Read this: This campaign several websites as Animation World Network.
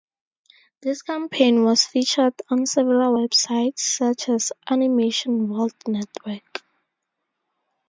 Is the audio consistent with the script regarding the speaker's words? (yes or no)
no